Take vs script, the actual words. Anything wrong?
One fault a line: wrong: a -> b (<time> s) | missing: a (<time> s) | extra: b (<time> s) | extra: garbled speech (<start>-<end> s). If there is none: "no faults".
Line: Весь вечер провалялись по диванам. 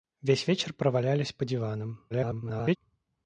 extra: garbled speech (2.1-2.8 s)